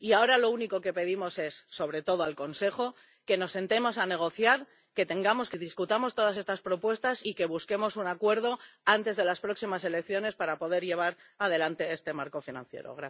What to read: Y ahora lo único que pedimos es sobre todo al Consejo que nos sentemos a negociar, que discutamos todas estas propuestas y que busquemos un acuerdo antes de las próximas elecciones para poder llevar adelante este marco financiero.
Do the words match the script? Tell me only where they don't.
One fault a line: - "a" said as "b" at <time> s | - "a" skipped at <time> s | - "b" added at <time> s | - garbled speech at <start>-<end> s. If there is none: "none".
none